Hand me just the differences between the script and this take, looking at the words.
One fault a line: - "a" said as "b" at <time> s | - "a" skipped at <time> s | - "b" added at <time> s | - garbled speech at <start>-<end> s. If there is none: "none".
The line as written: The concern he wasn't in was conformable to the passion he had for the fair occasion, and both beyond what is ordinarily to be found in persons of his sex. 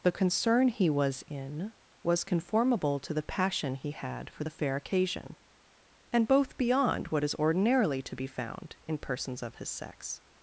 - "wasn't" said as "was" at 0.9 s